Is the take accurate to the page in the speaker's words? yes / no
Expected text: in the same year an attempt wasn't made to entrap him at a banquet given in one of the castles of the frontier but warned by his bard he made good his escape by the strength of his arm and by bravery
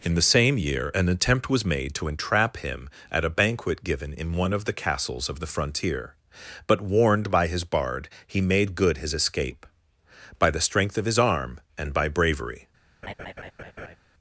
no